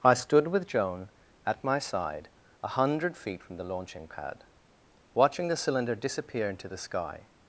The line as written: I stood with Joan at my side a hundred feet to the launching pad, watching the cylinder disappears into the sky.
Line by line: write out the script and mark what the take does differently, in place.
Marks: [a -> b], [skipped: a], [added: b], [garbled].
I stood with Joan at my side a hundred feet [to -> from] the launching pad, watching the cylinder [disappears -> disappear] into the sky.